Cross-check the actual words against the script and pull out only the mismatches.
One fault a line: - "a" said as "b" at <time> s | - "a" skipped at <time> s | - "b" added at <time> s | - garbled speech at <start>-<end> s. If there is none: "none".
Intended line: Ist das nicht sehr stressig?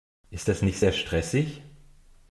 none